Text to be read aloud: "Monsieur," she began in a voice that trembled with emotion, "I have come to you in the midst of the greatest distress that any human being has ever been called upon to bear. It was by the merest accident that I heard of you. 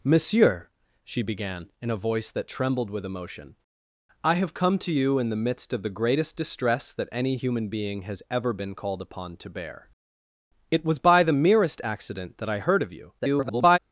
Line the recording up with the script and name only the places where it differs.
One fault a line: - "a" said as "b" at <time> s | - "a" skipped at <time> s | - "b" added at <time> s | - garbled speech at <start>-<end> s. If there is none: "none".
- garbled speech at 13.2-13.8 s